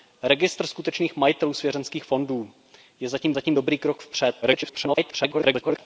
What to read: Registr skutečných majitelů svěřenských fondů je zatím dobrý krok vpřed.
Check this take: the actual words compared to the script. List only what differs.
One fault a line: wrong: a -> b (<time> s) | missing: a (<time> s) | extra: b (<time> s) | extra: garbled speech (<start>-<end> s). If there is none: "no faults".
extra: zatím (3.3 s)
extra: garbled speech (4.4-5.8 s)